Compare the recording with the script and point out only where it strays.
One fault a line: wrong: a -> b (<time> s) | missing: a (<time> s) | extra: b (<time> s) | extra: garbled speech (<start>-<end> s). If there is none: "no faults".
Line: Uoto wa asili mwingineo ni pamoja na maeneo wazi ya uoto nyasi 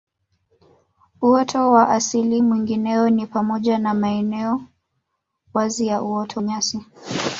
no faults